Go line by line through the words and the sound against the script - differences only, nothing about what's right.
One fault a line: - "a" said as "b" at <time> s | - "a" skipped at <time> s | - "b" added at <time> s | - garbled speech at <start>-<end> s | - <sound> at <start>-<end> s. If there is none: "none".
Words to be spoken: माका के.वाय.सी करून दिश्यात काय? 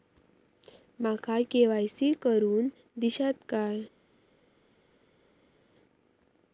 none